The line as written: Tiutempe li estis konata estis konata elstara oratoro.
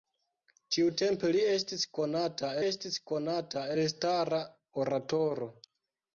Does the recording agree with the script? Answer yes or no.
yes